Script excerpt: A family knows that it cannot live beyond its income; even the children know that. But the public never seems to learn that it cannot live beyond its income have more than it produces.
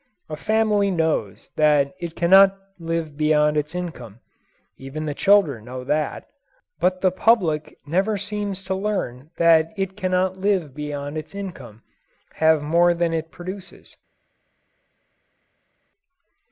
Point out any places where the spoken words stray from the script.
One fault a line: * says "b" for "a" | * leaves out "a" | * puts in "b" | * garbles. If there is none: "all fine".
all fine